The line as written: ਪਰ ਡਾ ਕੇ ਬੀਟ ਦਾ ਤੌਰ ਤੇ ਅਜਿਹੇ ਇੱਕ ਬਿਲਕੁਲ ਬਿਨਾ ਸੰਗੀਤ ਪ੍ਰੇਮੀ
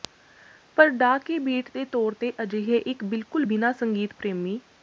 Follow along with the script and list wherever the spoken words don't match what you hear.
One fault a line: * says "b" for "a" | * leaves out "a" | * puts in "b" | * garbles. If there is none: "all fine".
* says "ਦੇ" for "ਦਾ"